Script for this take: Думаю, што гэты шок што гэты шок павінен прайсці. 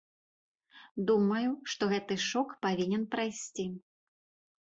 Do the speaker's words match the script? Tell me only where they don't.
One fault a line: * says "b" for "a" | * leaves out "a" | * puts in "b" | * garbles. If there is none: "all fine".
* leaves out "што гэты шок"